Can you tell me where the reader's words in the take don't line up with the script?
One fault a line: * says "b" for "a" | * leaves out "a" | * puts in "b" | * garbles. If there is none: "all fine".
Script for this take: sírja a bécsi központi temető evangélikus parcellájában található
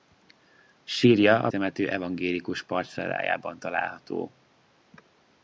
* leaves out "bécsi központi"